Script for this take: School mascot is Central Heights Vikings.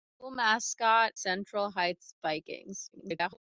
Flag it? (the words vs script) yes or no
yes